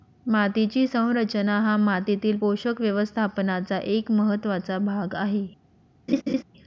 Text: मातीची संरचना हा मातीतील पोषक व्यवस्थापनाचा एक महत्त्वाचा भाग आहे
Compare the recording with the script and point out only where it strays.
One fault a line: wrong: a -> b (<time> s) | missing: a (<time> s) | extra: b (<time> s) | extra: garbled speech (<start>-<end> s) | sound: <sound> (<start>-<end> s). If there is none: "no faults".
sound: laugh (6.1-6.4 s)